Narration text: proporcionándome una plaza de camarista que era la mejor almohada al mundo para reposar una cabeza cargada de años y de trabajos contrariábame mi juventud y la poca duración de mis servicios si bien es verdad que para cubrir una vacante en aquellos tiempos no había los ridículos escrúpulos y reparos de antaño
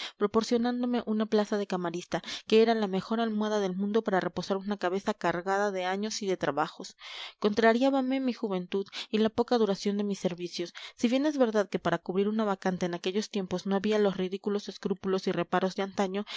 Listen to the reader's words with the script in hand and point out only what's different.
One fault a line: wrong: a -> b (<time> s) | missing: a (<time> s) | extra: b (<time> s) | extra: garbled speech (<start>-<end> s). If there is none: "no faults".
wrong: al -> del (3.6 s)